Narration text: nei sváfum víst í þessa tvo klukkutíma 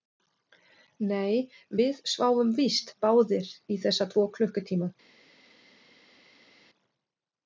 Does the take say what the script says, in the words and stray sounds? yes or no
no